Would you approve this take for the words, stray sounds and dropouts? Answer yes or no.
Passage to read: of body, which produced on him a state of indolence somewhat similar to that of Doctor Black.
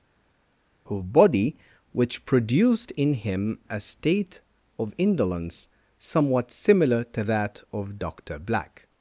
no